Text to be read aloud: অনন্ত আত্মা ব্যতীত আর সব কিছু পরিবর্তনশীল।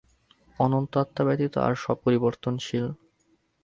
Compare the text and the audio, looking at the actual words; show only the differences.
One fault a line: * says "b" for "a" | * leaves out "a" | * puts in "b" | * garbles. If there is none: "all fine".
* leaves out "কিছু"